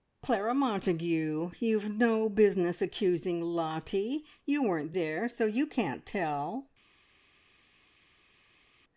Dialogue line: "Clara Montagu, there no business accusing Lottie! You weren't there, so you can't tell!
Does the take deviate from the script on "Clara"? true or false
false